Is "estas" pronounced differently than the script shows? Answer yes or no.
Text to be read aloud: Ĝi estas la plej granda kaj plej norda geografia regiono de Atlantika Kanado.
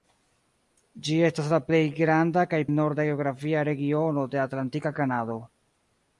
no